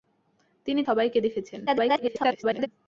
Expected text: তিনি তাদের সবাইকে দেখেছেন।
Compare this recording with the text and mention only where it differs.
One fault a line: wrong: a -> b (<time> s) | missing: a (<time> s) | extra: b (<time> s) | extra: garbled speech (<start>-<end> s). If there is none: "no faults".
missing: তাদের (0.8 s)
extra: garbled speech (1.7-2.7 s)